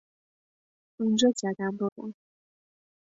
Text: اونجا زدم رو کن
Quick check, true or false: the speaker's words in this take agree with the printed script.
true